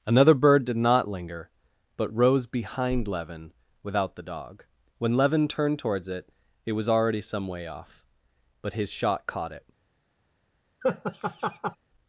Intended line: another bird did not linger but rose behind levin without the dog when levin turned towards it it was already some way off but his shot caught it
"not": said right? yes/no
yes